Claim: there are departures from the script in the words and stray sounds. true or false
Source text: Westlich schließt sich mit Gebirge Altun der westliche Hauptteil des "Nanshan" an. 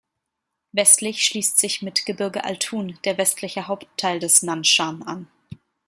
false